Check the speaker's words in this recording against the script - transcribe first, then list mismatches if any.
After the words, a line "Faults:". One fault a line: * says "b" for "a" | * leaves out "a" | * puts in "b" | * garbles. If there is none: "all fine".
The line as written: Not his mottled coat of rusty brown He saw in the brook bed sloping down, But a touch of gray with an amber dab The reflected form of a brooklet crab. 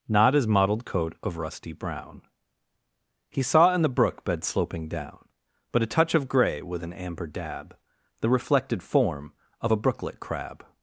Not his mottled coat of rusty brown He saw in the brook bed sloping down, But a touch of gray with an amber dab The reflected form of a brooklet crab.
Faults:
all fine